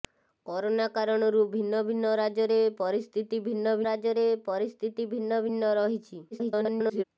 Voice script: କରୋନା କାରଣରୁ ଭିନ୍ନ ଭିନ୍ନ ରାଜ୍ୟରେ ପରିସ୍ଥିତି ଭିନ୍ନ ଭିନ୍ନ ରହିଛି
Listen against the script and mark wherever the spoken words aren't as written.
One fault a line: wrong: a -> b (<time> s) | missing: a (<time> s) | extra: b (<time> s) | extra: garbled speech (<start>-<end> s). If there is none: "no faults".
extra: ରାଜ୍ୟରେ ପରିସ୍ଥିତି ଭିନ୍ନ (3.9 s)
extra: garbled speech (6.3-7.0 s)